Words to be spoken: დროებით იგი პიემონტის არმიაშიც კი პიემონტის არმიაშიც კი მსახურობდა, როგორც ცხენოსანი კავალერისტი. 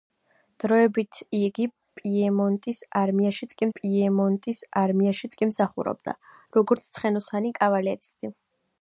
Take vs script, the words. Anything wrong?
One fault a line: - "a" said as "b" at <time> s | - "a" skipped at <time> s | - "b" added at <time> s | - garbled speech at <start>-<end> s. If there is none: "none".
none